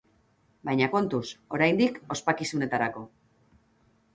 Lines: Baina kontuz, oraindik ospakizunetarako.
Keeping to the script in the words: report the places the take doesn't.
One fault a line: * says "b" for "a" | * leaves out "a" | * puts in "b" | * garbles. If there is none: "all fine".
all fine